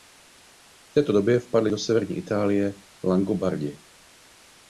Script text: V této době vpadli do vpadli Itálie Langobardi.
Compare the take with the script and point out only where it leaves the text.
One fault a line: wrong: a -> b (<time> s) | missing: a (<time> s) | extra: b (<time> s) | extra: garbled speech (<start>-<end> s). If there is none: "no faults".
wrong: vpadli -> severní (1.8 s)